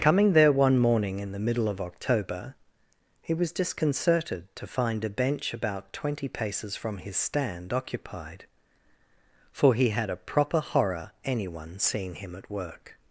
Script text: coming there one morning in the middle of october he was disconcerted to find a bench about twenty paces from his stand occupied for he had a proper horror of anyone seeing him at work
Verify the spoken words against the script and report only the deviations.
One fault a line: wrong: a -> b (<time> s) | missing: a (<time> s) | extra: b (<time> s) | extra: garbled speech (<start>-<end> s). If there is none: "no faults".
missing: of (11.1 s)